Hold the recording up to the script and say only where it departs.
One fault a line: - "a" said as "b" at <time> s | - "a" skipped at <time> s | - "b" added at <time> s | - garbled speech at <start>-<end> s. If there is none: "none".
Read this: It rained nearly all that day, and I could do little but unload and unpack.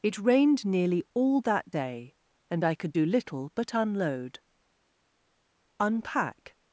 - "and" skipped at 4.4 s